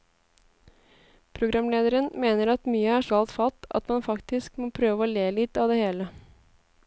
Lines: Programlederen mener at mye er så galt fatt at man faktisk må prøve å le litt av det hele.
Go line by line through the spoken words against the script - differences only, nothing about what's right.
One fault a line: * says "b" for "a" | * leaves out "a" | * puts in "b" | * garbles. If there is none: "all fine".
* leaves out "så"